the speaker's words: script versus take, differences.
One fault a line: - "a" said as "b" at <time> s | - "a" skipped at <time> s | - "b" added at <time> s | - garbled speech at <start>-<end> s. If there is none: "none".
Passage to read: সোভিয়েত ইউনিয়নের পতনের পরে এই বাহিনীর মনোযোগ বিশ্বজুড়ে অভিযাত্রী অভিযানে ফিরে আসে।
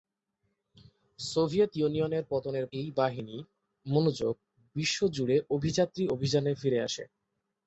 - "পরে" skipped at 2.7 s